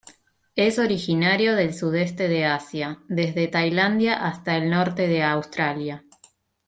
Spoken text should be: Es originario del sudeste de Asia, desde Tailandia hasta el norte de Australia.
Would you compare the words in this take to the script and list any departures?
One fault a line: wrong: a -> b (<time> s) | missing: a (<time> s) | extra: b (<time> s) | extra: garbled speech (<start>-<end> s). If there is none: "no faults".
no faults